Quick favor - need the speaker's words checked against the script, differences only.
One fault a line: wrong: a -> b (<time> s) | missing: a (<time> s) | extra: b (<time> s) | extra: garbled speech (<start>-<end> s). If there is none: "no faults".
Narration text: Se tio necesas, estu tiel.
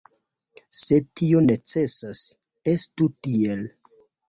no faults